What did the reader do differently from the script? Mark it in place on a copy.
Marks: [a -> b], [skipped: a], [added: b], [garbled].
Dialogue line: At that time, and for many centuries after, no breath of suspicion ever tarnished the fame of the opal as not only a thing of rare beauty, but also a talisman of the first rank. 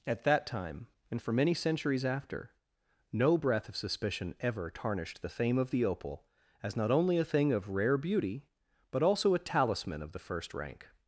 At that time, and for many centuries after, no breath of suspicion ever tarnished the fame of the opal as not only a thing of rare beauty, but also a talisman of the first rank.